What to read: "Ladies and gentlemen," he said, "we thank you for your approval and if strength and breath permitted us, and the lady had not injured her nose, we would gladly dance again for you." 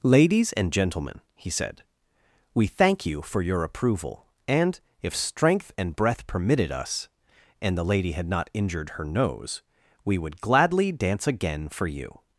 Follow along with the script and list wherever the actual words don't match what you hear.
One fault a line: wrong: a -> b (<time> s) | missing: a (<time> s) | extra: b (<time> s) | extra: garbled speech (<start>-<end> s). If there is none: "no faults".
no faults